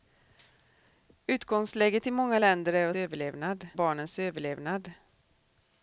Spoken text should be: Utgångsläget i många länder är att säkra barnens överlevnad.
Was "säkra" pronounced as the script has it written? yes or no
no